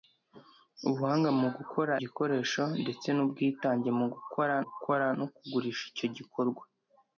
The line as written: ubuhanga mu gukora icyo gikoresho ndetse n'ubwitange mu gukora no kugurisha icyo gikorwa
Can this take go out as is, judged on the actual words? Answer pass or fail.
fail